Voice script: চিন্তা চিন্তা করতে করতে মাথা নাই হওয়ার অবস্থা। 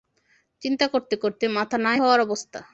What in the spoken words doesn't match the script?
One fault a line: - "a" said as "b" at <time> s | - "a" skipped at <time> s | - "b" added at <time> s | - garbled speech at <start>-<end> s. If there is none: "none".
- "চিন্তা" skipped at 0.8 s